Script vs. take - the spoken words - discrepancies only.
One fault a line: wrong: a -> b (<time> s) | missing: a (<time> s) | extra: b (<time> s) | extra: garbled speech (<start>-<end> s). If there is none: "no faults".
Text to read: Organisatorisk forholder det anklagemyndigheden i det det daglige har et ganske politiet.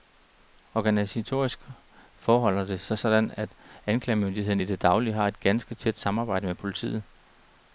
extra: sig sådan at (2.8 s)
missing: det (4.8 s)
extra: tæt samarbejde med (5.8 s)